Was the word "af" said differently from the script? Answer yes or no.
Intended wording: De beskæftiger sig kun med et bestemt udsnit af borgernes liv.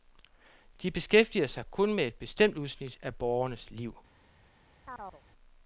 no